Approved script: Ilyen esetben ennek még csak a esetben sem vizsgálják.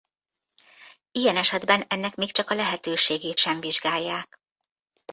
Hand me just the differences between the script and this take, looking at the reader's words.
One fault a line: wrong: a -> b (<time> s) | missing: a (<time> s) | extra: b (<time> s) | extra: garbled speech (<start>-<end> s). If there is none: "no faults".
wrong: esetben -> lehetőségét (2.5 s)